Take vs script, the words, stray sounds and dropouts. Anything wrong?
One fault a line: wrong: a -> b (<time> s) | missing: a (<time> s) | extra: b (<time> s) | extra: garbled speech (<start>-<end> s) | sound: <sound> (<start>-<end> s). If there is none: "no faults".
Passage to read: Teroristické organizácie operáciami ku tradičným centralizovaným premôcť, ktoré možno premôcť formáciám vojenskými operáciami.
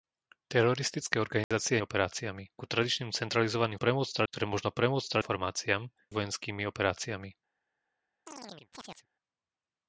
sound: dropout (1.4-1.5 s)
sound: chirp (8.3-9.1 s)